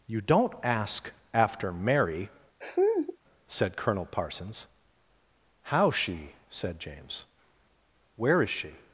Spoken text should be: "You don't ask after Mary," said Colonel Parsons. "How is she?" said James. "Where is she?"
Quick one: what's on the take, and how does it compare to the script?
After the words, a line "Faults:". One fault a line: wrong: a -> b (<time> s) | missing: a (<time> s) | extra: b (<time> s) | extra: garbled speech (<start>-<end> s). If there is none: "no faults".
"You don't ask after Mary," said Colonel Parsons. "How she?" said James. "Where is she?"
Faults:
missing: is (5.9 s)